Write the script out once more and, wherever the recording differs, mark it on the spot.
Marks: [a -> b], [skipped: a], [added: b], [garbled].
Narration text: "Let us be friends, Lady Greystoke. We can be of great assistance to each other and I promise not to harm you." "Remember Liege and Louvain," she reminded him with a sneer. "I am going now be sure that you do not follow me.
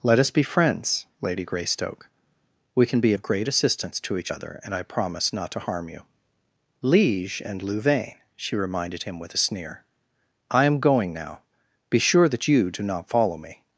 "Let us be friends, Lady Greystoke. We can be of great assistance to each other and I promise not to harm you." [skipped: "Remember] Liege and Louvain," she reminded him with a sneer. "I am going now be sure that you do not follow me.